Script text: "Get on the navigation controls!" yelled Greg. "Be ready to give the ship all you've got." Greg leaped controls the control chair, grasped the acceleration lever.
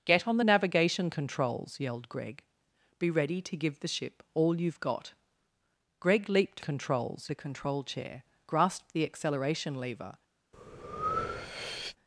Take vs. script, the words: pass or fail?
pass